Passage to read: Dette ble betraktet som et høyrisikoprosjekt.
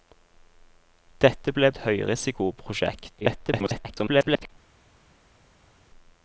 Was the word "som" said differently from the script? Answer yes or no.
yes